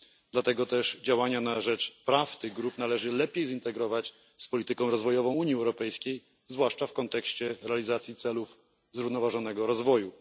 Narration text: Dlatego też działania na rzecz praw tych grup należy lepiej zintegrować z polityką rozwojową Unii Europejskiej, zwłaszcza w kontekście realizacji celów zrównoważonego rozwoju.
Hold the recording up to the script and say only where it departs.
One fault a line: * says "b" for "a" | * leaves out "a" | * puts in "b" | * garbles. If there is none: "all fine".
all fine